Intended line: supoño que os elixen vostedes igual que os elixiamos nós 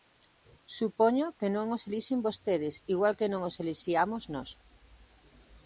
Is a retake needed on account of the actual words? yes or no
yes